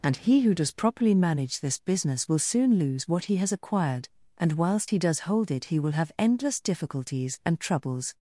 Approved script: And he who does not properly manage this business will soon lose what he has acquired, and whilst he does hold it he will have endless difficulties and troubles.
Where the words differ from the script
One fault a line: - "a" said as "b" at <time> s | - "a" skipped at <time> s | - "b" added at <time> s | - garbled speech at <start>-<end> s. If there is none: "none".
- "not" skipped at 0.7 s